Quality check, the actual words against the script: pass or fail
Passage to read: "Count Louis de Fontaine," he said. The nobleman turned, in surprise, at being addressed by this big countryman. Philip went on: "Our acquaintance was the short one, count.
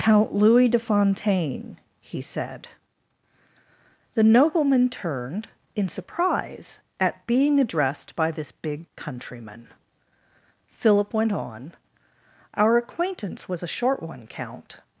fail